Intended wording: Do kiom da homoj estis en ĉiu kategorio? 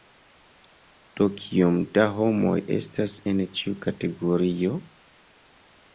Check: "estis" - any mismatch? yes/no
yes